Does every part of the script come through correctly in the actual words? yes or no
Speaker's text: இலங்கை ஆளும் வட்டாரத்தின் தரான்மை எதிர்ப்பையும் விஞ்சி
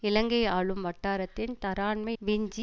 no